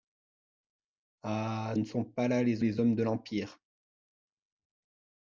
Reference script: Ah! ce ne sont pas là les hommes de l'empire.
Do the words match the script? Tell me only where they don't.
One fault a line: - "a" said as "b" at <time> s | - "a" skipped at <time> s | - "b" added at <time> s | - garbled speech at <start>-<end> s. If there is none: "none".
- "ce" skipped at 1.8 s
- "les" added at 2.6 s